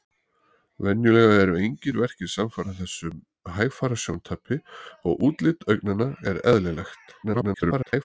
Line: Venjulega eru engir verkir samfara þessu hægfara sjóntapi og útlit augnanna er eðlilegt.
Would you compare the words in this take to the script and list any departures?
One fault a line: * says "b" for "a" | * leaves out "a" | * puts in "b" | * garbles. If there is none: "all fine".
* garbles